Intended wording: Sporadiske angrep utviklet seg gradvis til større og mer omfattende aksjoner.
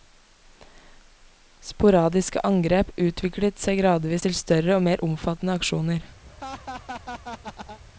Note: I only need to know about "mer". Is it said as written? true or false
true